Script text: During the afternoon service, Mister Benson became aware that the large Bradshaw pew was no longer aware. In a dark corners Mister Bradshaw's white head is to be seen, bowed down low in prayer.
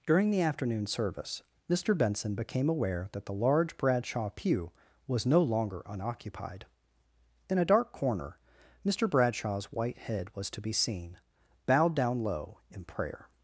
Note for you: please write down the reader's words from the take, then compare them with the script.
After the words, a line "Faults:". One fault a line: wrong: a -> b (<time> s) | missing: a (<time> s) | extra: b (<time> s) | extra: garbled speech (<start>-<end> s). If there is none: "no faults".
During the afternoon service, Mister Benson became aware that the large Bradshaw pew was no longer unoccupied. In a dark corner Mister Bradshaw's white head was to be seen, bowed down low in prayer.
Faults:
wrong: aware -> unoccupied (5.8 s)
wrong: corners -> corner (7.9 s)
wrong: is -> was (10.3 s)